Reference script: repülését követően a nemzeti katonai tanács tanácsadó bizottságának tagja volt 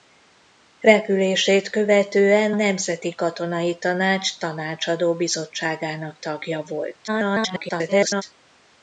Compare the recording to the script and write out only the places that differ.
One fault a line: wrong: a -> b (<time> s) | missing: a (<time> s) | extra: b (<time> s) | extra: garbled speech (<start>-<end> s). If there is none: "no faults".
missing: a (2.5 s)
extra: garbled speech (7.1-8.2 s)